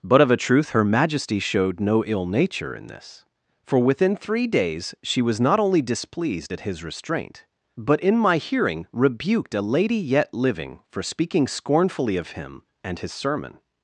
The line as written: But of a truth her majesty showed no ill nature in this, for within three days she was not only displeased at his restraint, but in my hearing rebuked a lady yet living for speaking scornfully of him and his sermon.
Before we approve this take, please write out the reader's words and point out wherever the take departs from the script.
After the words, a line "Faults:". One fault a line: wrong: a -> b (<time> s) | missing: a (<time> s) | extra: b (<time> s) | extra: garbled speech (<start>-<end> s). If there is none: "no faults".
But of a truth her majesty showed no ill nature in this, for within three days she was not only displeased at his restraint, but in my hearing rebuked a lady yet living for speaking scornfully of him and his sermon.
Faults:
no faults